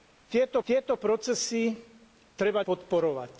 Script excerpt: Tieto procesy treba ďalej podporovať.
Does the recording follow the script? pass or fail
fail